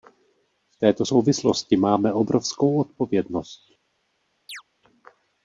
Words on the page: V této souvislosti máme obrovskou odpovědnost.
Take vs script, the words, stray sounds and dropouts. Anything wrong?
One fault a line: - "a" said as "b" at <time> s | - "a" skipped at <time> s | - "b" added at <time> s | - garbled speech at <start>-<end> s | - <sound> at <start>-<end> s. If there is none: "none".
- chirp at 4.5-4.6 s